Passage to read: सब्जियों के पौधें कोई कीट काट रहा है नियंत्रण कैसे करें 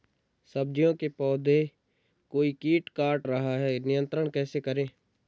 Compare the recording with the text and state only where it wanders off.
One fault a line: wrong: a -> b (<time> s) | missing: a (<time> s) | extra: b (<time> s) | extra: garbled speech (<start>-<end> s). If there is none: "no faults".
no faults